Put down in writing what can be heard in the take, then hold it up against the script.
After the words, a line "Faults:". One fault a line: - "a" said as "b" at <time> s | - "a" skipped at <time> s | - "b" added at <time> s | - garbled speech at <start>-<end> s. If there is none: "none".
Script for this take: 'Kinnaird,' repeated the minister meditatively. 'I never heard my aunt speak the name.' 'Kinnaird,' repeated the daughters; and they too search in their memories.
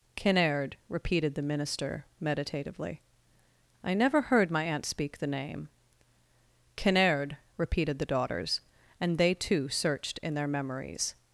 'Kinnaird,' repeated the minister meditatively. 'I never heard my aunt speak the name.' 'Kinnaird,' repeated the daughters; and they too searched in their memories.
Faults:
- "search" said as "searched" at 9.7 s